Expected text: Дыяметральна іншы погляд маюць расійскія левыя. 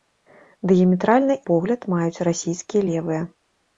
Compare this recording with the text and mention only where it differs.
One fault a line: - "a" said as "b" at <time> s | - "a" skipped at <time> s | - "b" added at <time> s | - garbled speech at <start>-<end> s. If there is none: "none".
- "іншы" skipped at 1.4 s